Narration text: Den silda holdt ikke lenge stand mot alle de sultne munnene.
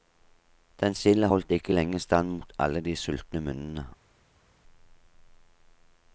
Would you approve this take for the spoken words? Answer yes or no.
yes